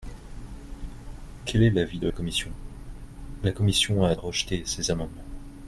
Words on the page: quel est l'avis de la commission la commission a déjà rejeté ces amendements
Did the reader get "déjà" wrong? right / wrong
wrong